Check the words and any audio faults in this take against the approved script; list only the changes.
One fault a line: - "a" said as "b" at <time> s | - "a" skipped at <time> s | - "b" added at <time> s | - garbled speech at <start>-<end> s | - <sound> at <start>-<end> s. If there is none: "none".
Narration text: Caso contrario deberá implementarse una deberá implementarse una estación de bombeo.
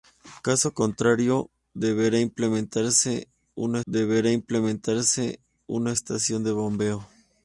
none